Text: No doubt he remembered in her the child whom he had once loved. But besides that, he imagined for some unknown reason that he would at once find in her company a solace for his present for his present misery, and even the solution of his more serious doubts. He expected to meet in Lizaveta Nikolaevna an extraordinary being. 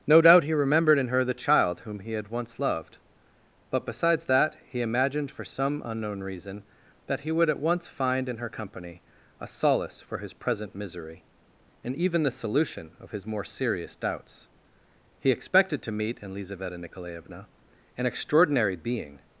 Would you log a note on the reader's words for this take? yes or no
yes